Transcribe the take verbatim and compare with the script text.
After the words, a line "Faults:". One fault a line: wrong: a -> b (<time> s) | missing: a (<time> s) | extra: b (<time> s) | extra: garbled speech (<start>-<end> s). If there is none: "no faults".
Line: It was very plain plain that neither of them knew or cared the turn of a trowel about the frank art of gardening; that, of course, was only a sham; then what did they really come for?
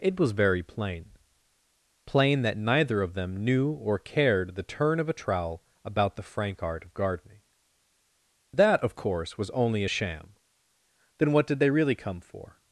It was very plain plain that neither of them knew or cared the turn of a trowel about the frank art of gardening; that, of course, was only a sham; then what did they really come for?
Faults:
no faults